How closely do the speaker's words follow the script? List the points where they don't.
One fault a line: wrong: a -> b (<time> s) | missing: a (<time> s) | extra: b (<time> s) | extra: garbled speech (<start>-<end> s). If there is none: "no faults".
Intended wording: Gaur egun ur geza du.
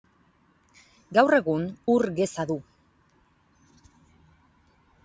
no faults